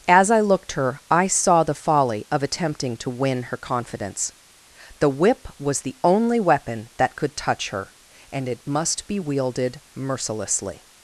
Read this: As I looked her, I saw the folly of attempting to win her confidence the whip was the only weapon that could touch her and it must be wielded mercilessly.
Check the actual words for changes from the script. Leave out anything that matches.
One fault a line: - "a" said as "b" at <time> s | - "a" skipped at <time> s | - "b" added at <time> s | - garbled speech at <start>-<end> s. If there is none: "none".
none